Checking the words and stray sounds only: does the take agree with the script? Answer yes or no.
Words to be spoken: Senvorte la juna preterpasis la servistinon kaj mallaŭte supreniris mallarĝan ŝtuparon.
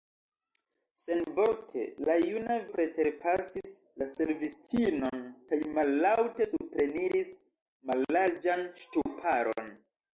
yes